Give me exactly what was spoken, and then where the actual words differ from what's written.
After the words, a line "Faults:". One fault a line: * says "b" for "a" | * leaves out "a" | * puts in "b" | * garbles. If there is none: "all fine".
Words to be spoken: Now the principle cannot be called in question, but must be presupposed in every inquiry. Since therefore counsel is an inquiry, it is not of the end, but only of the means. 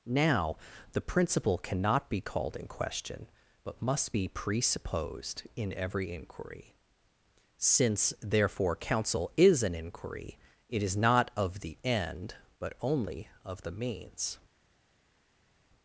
Now the principle cannot be called in question, but must be presupposed in every inquiry. Since therefore counsel is an inquiry, it is not of the end, but only of the means.
Faults:
all fine